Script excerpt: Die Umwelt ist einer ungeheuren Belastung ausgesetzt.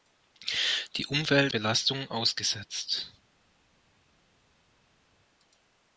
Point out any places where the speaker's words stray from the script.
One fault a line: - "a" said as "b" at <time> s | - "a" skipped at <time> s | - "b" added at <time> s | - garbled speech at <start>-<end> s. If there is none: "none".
- "ist einer ungeheuren" skipped at 1.5 s